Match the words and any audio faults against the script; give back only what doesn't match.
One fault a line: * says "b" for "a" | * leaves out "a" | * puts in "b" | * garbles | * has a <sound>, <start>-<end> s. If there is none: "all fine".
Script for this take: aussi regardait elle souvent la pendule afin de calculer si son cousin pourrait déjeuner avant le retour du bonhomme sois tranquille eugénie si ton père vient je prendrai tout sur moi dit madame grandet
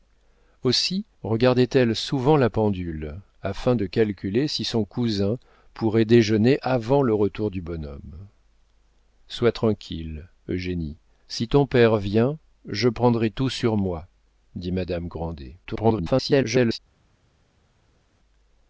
* garbles